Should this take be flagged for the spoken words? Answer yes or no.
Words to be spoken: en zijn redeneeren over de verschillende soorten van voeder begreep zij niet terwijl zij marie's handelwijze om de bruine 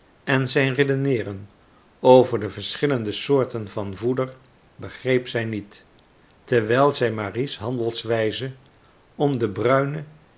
no